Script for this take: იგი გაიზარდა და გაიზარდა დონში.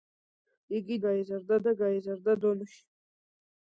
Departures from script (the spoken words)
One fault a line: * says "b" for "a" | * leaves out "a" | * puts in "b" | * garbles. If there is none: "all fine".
all fine